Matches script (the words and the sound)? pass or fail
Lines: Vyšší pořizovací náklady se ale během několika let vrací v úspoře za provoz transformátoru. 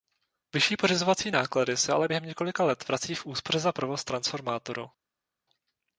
pass